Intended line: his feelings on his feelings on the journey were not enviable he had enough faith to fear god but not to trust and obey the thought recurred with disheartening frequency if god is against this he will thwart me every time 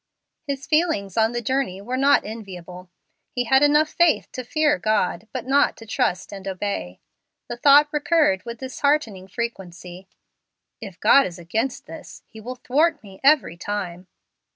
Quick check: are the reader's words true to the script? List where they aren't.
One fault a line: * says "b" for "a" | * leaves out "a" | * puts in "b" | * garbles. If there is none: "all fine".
* leaves out "his feelings on"